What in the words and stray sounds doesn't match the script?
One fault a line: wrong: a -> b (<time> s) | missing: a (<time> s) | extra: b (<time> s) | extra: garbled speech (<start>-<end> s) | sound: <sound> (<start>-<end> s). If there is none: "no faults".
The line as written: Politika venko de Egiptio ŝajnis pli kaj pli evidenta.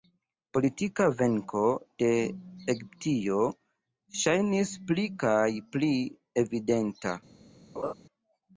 sound: laugh (7.8-7.9 s)